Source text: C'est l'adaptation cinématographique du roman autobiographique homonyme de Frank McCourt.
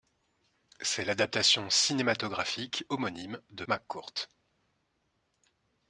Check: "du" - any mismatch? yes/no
yes